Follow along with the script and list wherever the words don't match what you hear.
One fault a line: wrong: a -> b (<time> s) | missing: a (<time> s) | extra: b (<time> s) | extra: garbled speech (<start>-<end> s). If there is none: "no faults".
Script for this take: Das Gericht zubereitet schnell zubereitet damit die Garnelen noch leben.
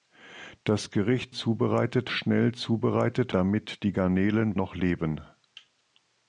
no faults